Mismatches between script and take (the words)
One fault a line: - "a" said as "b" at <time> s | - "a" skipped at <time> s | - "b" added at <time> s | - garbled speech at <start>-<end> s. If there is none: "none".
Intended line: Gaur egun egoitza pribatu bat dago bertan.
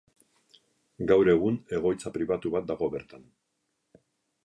none